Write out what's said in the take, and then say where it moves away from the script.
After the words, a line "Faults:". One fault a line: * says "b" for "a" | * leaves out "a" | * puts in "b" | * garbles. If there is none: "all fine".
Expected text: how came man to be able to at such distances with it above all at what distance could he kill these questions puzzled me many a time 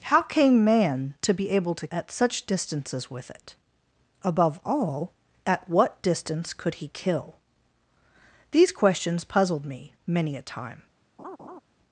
how came man to be able to at such distances with it above all at what distance could he kill these questions puzzled me many a time
Faults:
all fine